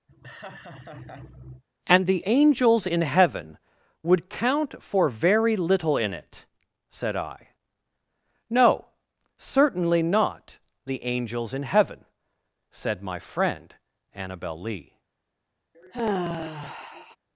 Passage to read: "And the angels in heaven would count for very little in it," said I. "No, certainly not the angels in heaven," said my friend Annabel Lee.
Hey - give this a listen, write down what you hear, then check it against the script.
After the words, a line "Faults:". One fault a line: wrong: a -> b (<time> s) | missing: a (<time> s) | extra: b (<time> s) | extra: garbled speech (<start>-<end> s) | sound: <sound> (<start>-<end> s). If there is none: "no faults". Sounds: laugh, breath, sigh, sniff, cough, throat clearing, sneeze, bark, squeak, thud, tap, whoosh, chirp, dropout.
"And the angels in heaven would count for very little in it," said I. "No, certainly not the angels in heaven," said my friend Annabel Lee.
Faults:
sound: laugh (0.1-1.6 s)
sound: sigh (15.7-17.2 s)